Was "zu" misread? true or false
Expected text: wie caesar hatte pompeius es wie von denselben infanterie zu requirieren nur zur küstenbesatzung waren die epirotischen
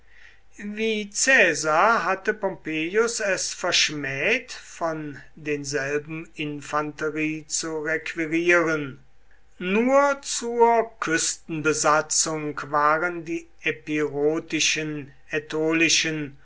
false